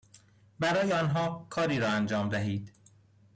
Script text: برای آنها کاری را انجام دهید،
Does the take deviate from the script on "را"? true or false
false